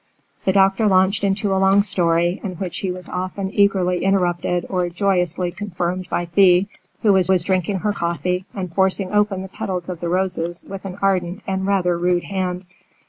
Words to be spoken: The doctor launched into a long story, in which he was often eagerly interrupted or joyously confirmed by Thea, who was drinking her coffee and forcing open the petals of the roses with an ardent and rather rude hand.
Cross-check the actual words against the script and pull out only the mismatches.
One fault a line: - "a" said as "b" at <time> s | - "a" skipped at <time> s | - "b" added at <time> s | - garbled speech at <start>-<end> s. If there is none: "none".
- "was" added at 7.3 s